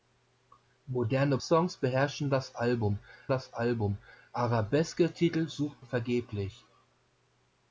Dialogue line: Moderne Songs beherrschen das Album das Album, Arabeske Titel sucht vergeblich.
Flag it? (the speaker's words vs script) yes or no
no